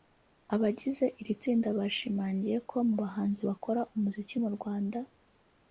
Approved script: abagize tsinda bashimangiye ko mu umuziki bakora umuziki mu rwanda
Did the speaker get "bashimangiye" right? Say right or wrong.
right